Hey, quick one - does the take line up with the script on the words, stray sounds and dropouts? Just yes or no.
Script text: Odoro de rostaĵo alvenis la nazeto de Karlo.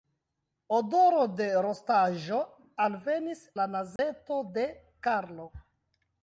no